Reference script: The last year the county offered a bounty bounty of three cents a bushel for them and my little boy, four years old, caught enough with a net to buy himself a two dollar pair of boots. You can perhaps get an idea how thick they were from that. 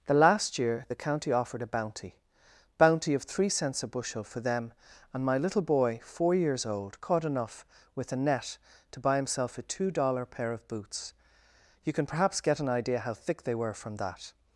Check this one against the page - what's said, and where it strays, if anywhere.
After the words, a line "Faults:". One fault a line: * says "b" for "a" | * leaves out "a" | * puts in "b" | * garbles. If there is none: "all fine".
The last year the county offered a bounty bounty of three cents a bushel for them and my little boy, four years old, caught enough with a net to buy himself a two dollar pair of boots. You can perhaps get an idea how thick they were from that.
Faults:
all fine